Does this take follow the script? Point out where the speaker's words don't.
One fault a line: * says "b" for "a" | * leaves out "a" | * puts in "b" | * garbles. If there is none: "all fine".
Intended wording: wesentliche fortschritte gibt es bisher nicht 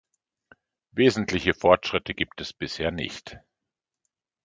all fine